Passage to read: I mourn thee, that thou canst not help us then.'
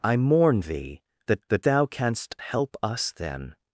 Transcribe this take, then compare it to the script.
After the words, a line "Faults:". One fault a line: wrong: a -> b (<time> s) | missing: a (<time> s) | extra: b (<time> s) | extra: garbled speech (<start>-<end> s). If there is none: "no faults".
I mourn thee, that that thou canst help us then.'
Faults:
extra: that (1.5 s)
missing: not (2.3 s)